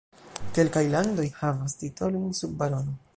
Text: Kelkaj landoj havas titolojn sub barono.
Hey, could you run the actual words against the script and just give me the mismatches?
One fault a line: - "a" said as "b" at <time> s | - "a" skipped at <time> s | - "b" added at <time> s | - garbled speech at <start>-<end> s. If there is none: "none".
none